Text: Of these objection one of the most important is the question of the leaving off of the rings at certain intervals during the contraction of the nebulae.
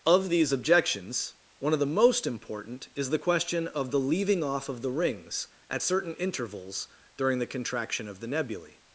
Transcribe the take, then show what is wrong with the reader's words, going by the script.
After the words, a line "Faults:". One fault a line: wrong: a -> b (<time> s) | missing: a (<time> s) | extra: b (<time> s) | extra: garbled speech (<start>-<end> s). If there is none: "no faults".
Of these objections one of the most important is the question of the leaving off of the rings at certain intervals during the contraction of the nebulae.
Faults:
wrong: objection -> objections (0.5 s)